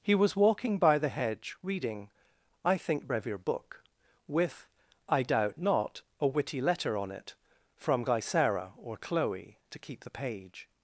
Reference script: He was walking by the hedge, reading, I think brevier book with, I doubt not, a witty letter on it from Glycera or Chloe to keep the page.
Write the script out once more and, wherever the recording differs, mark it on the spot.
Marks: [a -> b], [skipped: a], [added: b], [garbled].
He was walking by the hedge, reading, I think brevier book with, I doubt not, a witty letter on it from Glycera or Chloe to keep the page.